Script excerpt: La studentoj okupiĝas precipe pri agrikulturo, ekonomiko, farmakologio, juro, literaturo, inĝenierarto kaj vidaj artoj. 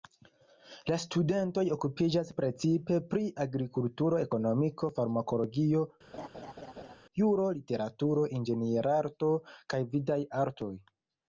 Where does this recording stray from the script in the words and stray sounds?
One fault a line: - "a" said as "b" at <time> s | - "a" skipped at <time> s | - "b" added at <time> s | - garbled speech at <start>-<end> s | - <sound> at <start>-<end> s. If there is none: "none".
- laugh at 6.1-7.0 s